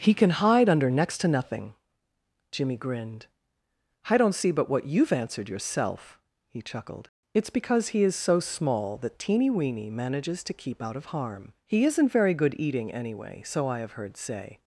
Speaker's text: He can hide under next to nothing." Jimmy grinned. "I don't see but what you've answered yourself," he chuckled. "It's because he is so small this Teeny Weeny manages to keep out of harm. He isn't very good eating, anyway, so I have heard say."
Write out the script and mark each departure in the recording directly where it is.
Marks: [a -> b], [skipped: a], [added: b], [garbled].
He can hide under next to nothing." Jimmy grinned. "I don't see but what you've answered yourself," he chuckled. "It's because he is so small [this -> that] Teeny Weeny manages to keep out of harm. He isn't very good eating, anyway, so I have heard say."